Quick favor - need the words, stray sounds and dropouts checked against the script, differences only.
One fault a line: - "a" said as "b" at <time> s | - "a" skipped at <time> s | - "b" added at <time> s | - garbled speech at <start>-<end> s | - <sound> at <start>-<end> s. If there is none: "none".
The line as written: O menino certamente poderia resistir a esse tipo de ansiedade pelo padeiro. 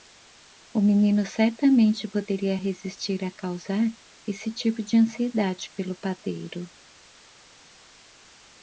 - "causar" added at 3.3 s